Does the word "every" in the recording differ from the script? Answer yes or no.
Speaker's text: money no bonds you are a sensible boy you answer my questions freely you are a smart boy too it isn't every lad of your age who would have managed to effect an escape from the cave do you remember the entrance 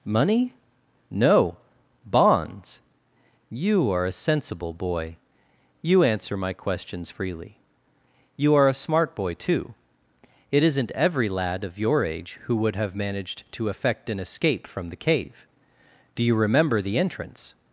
no